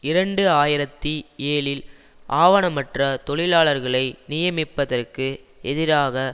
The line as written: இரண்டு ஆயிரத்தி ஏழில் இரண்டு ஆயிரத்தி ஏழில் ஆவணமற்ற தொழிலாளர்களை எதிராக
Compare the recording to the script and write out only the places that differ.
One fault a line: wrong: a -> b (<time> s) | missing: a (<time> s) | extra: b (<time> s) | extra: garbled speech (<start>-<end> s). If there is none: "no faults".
missing: இரண்டு ஆயிரத்தி ஏழில் (1.8 s)
extra: நியமிப்பதற்கு (4.3 s)